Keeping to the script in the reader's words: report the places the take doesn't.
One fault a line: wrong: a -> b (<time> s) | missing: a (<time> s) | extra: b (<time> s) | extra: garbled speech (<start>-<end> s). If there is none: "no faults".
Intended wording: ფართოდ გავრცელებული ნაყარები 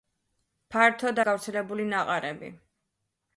no faults